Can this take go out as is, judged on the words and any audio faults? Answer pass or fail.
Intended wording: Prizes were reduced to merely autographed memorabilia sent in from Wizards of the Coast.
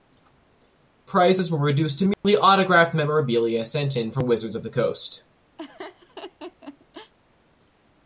fail